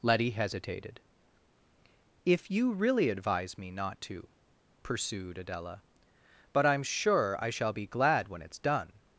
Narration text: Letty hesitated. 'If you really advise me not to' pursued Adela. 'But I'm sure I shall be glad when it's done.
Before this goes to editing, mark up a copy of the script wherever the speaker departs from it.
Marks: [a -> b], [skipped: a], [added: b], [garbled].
Letty hesitated. 'If you really advise me not to' pursued Adela. 'But I'm sure I shall be glad when it's done.